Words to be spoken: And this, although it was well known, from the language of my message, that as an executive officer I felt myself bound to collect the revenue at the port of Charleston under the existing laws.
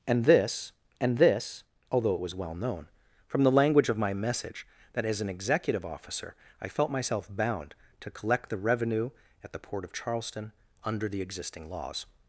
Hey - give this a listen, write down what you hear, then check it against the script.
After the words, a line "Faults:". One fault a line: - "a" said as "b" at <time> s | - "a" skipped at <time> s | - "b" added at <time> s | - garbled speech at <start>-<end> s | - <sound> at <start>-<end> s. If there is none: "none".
And this and this, although it was well known, from the language of my message, that as an executive officer I felt myself bound to collect the revenue at the port of Charleston under the existing laws.
Faults:
- "and this" added at 1.0 s